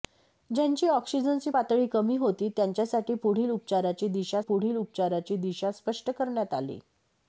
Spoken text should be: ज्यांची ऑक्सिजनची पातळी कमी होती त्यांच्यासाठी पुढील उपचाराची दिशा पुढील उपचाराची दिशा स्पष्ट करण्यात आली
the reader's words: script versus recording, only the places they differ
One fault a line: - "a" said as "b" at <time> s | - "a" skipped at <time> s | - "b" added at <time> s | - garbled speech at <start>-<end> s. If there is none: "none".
none